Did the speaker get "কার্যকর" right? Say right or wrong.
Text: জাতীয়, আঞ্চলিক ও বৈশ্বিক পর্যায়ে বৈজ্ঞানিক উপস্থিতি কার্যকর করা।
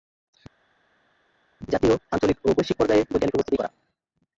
wrong